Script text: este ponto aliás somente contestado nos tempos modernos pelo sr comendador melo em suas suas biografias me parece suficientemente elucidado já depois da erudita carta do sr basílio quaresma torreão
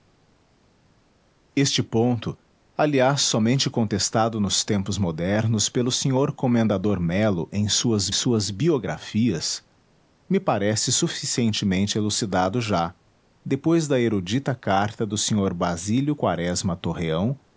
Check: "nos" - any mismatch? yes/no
no